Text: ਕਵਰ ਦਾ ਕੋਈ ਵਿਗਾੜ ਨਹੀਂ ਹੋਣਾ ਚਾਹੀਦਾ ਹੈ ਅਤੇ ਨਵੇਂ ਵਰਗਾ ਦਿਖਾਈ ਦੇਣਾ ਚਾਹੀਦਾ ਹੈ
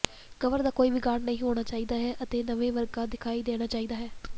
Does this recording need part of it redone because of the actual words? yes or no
no